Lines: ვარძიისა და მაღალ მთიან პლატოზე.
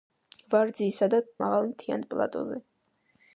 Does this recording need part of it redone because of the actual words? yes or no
no